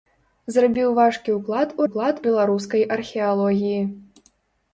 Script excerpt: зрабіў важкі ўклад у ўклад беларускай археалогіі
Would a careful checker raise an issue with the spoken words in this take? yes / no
no